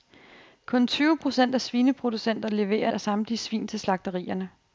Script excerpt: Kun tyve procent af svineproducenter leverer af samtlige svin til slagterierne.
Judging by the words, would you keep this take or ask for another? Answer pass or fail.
pass